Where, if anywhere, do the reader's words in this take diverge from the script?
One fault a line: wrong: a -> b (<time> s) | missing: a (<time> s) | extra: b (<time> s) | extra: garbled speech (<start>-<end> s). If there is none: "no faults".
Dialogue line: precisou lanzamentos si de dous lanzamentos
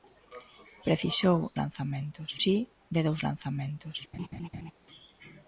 no faults